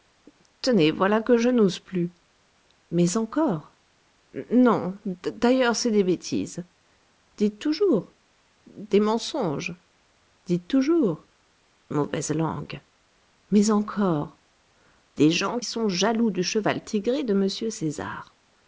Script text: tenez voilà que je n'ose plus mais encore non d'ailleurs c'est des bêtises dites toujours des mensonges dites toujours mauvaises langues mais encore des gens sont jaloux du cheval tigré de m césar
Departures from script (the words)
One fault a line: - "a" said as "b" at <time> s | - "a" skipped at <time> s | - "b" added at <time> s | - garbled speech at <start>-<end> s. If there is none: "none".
none